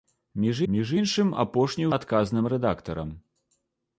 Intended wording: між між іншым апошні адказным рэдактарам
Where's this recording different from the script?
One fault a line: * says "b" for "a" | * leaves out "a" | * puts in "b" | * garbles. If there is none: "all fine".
all fine